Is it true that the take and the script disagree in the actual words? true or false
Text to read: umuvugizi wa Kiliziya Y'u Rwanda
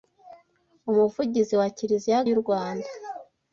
false